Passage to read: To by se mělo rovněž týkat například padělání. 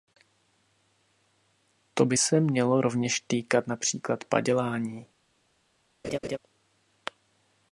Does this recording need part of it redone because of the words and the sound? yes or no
yes